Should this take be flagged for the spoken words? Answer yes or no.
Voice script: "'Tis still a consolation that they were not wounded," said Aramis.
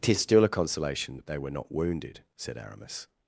no